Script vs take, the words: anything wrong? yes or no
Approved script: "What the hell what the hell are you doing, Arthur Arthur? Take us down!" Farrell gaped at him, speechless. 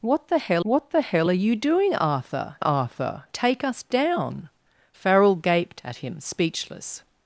no